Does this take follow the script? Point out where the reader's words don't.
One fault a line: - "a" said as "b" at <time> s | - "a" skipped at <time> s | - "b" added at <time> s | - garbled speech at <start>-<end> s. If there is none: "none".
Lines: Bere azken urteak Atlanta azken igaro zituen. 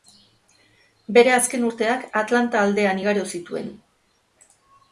- "azken" said as "aldean" at 2.7 s